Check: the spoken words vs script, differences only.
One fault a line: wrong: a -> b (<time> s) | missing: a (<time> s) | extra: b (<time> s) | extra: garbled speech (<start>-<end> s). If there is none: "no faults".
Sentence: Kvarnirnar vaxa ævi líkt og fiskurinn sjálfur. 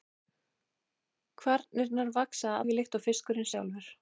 no faults